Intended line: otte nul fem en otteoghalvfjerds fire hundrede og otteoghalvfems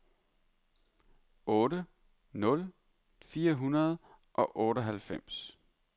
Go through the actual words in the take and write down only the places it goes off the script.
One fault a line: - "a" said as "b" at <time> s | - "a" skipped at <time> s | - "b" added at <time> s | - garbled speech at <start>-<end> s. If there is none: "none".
- "fem en otteoghalvfjerds" skipped at 2.6 s